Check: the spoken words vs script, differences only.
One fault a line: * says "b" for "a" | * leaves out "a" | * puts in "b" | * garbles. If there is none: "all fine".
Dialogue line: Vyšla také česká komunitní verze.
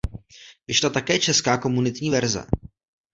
all fine